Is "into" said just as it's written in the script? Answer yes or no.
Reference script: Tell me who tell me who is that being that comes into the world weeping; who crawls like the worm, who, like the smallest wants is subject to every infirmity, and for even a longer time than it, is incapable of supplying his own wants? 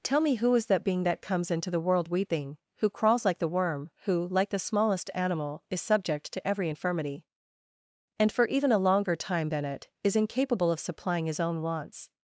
yes